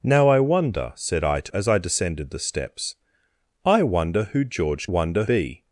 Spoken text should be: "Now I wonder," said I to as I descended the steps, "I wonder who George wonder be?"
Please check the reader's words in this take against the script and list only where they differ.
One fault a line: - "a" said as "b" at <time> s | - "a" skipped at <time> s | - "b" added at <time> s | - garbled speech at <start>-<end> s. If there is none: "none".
none